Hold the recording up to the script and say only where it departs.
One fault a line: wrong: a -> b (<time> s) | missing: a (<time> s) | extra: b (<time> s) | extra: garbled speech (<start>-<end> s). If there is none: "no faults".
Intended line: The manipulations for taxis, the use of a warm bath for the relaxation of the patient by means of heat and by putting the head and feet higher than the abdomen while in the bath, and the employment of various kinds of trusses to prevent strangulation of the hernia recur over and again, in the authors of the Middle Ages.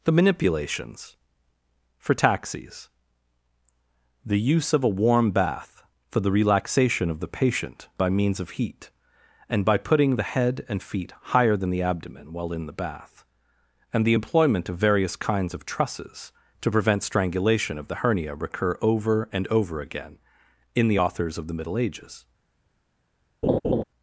extra: over (19.5 s)